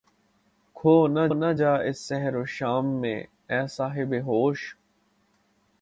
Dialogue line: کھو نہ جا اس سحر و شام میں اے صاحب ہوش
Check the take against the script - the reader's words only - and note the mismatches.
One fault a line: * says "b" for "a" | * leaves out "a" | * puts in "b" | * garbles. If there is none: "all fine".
* puts in "نہ"